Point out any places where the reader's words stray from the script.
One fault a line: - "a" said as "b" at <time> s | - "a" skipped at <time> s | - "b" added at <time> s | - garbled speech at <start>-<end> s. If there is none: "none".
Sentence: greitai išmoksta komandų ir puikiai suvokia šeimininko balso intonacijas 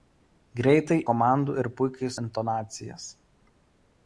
- "išmoksta" skipped at 0.9 s
- "suvokia šeimininko balso" skipped at 2.1 s